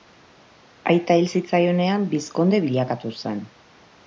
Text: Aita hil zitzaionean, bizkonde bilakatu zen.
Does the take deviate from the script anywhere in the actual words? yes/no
no